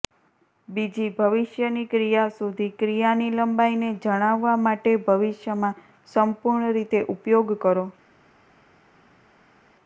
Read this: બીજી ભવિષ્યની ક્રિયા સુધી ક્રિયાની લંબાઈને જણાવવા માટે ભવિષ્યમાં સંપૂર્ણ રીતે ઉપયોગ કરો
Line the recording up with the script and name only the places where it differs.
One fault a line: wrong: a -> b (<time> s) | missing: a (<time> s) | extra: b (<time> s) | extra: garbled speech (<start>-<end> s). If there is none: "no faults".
no faults